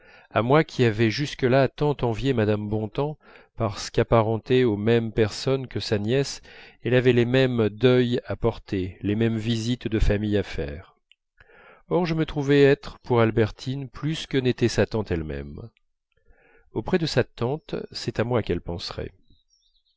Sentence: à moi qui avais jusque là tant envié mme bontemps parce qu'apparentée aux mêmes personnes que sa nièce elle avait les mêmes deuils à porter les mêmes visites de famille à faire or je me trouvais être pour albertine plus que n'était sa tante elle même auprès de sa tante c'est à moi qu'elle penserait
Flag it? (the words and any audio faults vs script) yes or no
no